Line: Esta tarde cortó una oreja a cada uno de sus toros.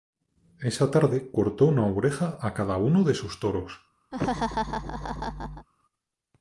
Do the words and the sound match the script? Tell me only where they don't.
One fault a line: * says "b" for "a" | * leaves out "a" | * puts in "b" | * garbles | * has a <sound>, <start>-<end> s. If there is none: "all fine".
* says "Esa" for "Esta"
* has a laugh, 4.1-5.7 s